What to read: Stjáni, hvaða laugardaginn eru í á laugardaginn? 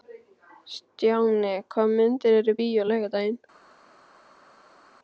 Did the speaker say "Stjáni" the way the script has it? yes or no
yes